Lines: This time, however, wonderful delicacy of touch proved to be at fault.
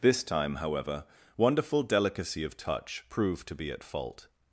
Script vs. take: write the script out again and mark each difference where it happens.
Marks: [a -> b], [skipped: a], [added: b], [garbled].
This time, however, wonderful delicacy of touch proved to be at fault.